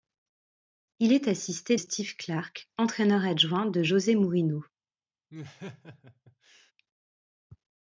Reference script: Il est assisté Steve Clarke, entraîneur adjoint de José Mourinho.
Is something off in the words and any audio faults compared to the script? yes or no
yes